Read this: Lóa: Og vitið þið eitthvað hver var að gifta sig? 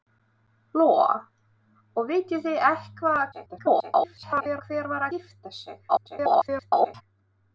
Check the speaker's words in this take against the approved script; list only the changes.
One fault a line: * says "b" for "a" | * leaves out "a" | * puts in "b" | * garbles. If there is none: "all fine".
* garbles
* leaves out "að"
* garbles